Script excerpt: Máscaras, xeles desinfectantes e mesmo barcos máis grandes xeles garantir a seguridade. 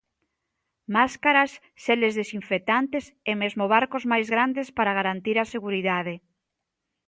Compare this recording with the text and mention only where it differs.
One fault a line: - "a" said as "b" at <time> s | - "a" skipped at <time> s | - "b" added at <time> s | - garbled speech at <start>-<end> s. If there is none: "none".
- "xeles" said as "para" at 4.8 s